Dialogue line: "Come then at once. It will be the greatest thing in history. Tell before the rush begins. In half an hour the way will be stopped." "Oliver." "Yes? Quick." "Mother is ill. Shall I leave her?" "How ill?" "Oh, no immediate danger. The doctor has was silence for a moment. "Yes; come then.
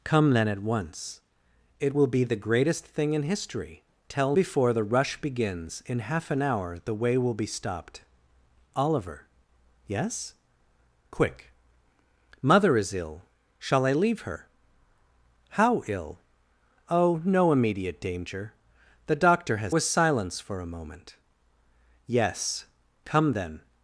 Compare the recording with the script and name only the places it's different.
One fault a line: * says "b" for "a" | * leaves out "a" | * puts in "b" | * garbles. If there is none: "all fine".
all fine